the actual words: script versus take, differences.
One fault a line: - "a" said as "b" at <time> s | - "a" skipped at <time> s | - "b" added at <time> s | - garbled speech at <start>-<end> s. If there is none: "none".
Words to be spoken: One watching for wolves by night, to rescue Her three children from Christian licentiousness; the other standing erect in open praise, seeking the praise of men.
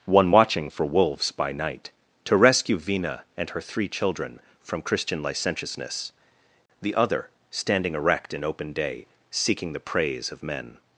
- "Vina and" added at 2.8 s
- "praise" said as "day" at 8.7 s